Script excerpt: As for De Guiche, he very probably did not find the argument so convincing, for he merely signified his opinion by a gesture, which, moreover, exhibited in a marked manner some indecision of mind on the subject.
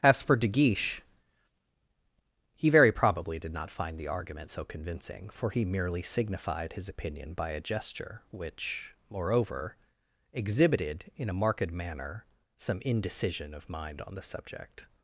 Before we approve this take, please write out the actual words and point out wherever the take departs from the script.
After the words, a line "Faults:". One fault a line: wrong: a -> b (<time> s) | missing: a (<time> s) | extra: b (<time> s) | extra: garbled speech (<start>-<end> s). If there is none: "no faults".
As for De Guiche, he very probably did not find the argument so convincing, for he merely signified his opinion by a gesture, which, moreover, exhibited in a marked manner some indecision of mind on the subject.
Faults:
no faults